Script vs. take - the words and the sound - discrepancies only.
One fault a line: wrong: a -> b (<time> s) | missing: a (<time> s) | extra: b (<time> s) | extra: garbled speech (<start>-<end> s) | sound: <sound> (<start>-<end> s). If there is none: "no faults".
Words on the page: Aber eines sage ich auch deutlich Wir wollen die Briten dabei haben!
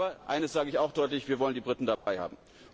sound: dropout (2.0-2.1 s)